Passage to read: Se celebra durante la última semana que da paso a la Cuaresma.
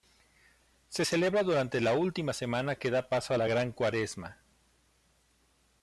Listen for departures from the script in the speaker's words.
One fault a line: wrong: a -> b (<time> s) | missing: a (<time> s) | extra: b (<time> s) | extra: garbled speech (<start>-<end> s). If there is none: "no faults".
extra: Gran (3.5 s)